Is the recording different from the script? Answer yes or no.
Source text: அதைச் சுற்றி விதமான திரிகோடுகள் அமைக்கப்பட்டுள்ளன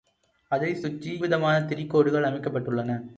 no